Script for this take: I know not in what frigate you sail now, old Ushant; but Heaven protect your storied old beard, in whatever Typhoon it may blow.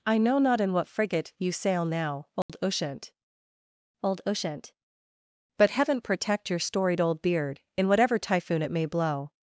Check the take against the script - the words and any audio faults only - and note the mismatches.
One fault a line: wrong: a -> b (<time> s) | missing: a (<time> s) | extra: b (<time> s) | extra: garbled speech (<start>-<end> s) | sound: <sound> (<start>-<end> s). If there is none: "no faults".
sound: dropout (2.4-2.5 s)
extra: old Ushant (4.0 s)